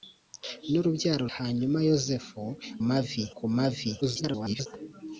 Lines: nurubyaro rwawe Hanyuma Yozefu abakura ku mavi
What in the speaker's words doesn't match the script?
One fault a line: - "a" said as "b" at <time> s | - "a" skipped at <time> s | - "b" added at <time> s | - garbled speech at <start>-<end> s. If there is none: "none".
- "rwawe" skipped at 1.2 s
- "abakura" said as "mavi" at 2.9 s
- garbled speech at 4.0-4.7 s